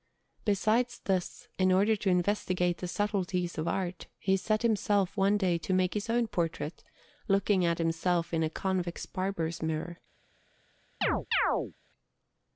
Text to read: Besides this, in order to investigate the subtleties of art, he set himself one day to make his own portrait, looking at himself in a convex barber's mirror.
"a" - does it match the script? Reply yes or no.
yes